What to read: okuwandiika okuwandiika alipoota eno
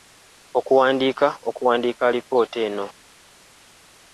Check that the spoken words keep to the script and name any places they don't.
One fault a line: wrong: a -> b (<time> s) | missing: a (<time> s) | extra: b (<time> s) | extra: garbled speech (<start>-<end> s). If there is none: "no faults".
no faults